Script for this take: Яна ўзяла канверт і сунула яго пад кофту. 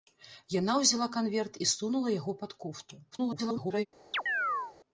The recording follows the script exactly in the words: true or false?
false